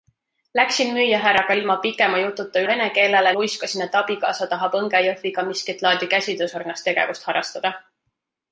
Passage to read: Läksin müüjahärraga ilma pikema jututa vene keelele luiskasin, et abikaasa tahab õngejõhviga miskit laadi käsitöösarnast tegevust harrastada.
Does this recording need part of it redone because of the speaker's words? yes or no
no